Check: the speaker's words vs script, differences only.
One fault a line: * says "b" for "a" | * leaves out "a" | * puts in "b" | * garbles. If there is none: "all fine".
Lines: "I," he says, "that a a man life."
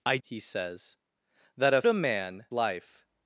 all fine